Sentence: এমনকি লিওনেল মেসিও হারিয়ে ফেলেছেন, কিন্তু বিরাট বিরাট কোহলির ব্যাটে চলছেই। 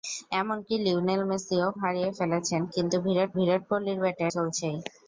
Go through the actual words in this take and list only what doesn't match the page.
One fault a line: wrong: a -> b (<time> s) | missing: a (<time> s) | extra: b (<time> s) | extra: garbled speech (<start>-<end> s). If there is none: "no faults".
no faults